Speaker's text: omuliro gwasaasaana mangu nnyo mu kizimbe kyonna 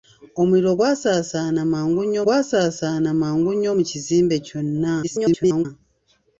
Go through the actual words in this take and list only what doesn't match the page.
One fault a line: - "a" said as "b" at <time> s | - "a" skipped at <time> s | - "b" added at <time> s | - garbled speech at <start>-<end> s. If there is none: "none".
- "gwasaasaana mangu nnyo" added at 2.2 s
- garbled speech at 5.0-5.7 s